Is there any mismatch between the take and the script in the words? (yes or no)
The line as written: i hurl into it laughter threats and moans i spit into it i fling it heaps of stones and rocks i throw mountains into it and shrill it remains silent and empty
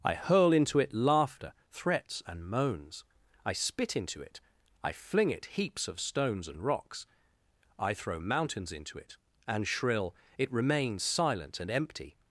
no